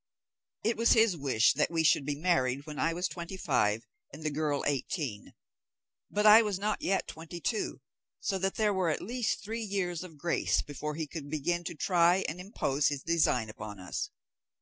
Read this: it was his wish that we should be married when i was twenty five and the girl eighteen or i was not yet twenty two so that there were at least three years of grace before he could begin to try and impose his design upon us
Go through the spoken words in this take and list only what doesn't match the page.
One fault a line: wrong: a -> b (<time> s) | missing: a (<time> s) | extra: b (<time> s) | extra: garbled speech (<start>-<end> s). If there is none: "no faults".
wrong: or -> but (6.1 s)